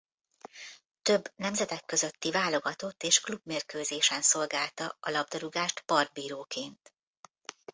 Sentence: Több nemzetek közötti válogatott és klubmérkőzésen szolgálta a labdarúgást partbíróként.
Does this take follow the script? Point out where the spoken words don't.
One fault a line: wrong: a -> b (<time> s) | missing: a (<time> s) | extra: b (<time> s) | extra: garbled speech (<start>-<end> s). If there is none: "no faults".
no faults